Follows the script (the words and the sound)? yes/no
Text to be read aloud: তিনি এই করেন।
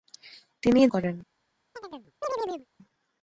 no